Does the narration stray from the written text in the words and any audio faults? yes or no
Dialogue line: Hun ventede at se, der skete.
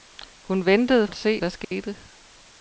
yes